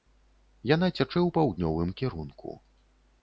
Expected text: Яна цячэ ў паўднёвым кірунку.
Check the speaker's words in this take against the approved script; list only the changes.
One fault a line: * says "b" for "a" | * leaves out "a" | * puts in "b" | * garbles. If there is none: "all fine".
all fine